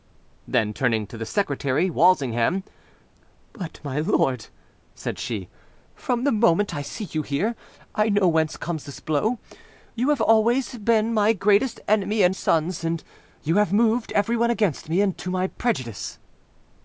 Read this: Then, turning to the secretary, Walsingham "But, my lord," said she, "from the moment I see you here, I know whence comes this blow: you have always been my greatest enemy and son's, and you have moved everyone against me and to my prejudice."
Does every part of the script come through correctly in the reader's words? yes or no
yes